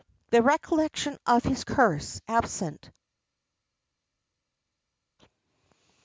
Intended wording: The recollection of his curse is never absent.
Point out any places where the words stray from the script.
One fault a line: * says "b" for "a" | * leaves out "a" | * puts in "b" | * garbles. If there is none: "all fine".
* leaves out "is never"